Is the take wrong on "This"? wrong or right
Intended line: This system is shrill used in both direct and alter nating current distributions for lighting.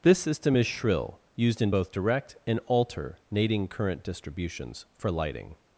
right